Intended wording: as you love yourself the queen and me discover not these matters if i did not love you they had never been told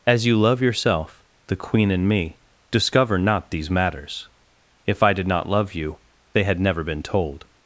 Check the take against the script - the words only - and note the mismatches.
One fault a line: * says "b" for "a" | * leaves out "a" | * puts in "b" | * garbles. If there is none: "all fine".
all fine